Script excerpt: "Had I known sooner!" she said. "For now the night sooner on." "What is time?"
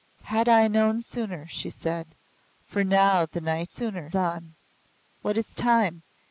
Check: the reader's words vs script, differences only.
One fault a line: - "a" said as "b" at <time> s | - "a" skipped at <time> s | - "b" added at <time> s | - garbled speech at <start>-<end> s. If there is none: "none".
none